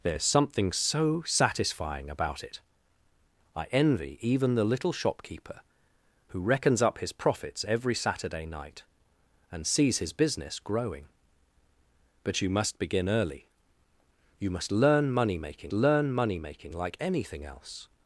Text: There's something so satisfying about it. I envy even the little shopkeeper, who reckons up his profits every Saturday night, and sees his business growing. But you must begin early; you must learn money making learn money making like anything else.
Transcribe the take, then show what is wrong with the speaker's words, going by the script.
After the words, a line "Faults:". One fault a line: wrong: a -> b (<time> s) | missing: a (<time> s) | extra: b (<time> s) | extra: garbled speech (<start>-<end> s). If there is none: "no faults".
There's something so satisfying about it. I envy even the little shopkeeper, who reckons up his profits every Saturday night, and sees his business growing. But you must begin early; you must learn money making learn money making like anything else.
Faults:
no faults